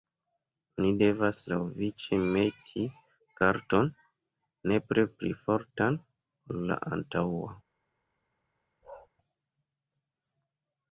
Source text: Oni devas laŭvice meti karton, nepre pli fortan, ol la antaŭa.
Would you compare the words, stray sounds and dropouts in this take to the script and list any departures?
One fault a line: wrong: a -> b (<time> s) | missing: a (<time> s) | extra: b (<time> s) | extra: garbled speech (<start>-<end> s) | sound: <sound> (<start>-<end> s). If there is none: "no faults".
sound: bark (8.8-9.1 s)